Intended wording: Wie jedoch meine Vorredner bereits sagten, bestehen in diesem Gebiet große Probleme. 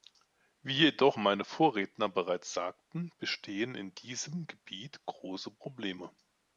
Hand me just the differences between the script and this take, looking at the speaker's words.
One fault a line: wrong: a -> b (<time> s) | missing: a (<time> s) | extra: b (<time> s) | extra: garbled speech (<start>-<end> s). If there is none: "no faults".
no faults